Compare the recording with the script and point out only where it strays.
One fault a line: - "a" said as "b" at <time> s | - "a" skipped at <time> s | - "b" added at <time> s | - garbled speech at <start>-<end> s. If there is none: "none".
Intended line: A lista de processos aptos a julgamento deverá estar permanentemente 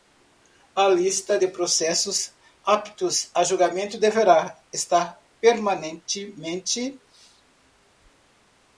none